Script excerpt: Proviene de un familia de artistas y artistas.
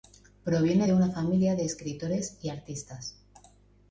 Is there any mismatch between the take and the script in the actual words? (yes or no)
yes